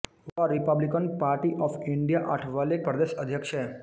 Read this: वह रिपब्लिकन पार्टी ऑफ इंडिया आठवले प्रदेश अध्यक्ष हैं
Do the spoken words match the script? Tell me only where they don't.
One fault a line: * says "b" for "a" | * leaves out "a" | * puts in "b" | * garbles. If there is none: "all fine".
all fine